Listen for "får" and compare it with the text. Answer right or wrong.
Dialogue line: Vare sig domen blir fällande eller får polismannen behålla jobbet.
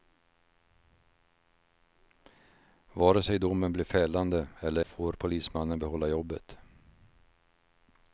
right